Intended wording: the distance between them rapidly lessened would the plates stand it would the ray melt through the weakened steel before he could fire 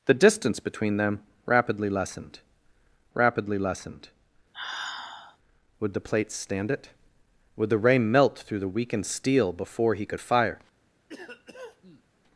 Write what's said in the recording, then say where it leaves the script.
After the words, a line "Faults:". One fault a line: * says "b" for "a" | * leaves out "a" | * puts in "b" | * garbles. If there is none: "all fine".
the distance between them rapidly lessened rapidly lessened would the plates stand it would the ray melt through the weakened steel before he could fire
Faults:
* puts in "rapidly lessened"